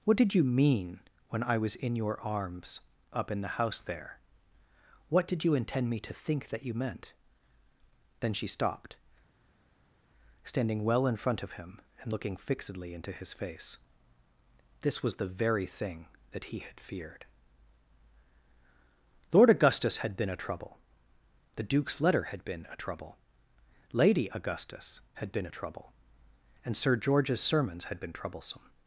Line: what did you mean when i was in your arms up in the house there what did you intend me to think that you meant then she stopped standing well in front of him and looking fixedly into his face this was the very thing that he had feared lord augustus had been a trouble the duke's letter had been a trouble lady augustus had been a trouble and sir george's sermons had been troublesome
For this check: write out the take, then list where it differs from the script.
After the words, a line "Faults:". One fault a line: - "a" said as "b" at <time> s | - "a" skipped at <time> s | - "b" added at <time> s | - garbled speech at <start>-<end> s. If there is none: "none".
what did you mean when i was in your arms up in the house there what did you intend me to think that you meant then she stopped standing well in front of him and looking fixedly into his face this was the very thing that he had feared lord augustus had been a trouble the duke's letter had been a trouble lady augustus had been a trouble and sir george's sermons had been troublesome
Faults:
none